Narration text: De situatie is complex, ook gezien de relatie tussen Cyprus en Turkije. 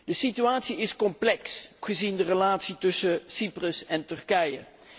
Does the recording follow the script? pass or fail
fail